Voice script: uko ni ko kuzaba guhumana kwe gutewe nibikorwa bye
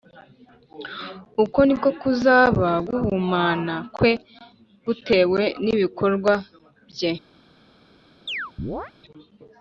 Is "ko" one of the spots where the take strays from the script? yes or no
no